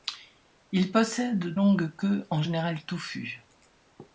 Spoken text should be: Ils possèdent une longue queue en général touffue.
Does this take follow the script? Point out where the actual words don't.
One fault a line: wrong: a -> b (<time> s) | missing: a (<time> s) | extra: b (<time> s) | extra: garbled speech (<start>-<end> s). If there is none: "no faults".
missing: une (1.6 s)